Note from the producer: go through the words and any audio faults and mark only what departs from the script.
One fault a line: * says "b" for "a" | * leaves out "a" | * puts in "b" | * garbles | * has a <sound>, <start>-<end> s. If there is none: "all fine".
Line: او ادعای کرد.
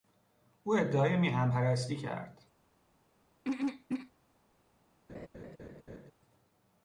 * puts in "میهن پرستی"
* has a throat clearing, 3.4-4.1 s
* has a laugh, 5.1-6.1 s